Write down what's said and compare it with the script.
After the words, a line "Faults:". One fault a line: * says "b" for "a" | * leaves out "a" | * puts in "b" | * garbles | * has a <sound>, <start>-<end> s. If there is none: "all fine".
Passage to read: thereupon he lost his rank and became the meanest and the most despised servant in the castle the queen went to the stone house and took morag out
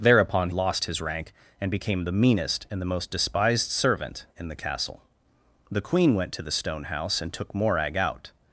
thereupon lost his rank and became the meanest and the most despised servant in the castle the queen went to the stone house and took morag out
Faults:
* leaves out "he"